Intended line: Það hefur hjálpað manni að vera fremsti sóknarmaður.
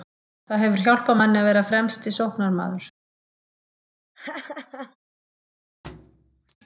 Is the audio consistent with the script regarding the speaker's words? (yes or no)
yes